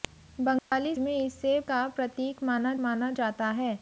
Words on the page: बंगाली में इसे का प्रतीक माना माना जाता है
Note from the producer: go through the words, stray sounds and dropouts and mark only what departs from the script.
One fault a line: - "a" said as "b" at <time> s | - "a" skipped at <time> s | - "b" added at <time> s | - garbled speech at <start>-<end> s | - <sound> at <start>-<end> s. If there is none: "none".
- dropout at 0.6-0.7 s